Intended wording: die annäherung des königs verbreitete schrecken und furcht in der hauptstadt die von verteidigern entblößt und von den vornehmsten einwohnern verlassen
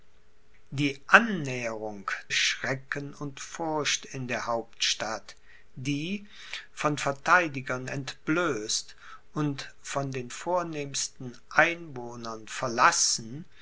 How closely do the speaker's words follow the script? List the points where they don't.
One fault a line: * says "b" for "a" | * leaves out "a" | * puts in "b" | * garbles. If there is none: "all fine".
* leaves out "des königs verbreitete"